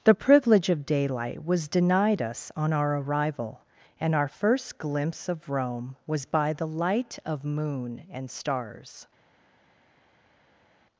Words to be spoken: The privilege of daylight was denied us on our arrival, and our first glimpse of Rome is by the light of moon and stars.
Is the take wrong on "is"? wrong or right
wrong